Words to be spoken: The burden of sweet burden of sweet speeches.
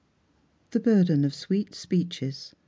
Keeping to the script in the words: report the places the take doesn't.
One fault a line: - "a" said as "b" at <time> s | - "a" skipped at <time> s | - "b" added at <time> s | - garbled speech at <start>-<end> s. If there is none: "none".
- "burden of sweet" skipped at 1.8 s